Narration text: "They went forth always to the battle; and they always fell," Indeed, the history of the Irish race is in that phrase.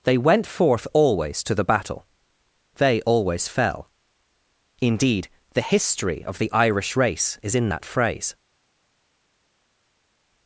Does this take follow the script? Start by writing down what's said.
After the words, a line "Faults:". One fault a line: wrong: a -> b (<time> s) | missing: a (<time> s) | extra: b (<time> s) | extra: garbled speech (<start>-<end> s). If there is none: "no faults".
"They went forth always to the battle; they always fell," Indeed, the history of the Irish race is in that phrase.
Faults:
missing: and (2.0 s)